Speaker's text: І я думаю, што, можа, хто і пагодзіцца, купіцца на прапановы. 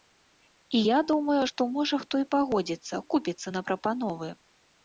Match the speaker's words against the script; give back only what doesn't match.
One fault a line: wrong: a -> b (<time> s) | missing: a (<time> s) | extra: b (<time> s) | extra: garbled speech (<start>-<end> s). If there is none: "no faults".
no faults